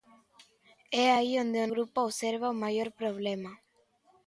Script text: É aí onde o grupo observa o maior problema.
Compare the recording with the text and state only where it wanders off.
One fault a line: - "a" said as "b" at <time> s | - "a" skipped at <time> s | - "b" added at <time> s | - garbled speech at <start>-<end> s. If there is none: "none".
none